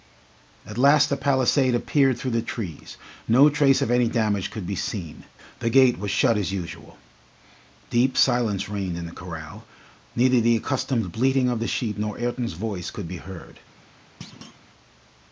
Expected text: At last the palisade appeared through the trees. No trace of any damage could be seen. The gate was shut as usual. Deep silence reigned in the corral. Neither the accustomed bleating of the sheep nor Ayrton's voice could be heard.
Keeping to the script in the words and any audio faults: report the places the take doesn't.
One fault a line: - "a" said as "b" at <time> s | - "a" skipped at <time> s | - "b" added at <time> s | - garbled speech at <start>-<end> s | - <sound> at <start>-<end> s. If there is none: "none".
- thud at 14.2-14.6 s